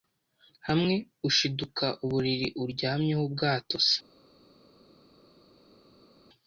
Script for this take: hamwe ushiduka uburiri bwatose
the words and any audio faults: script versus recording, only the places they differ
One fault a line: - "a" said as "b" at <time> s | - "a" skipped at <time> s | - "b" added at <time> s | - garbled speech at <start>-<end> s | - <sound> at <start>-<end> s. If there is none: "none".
- "uryamyeho" added at 2.6 s